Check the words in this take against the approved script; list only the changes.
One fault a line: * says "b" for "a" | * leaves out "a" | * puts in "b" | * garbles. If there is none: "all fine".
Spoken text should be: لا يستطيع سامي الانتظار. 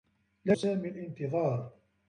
* leaves out "يستطيع"